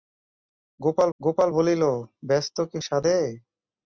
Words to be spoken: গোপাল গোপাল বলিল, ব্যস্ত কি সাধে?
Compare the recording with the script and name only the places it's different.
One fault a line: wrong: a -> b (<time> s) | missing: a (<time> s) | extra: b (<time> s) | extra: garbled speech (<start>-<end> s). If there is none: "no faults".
no faults